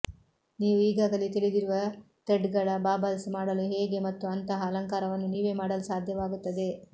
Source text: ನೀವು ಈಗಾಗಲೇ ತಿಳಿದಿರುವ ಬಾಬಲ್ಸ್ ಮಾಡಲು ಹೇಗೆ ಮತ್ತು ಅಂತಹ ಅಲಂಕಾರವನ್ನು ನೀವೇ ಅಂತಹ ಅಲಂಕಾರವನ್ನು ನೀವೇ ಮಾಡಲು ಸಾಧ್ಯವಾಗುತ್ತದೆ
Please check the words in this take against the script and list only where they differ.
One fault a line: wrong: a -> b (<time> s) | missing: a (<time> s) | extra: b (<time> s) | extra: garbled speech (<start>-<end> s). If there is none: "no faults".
extra: ಥ್ರೆಡ್ಗಳ (2.3 s)
missing: ಅಂತಹ ಅಲಂಕಾರವನ್ನು ನೀವೇ (5.5 s)